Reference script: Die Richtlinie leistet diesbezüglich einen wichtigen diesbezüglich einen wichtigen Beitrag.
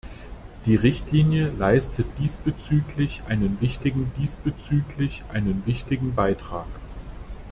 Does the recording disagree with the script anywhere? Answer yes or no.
no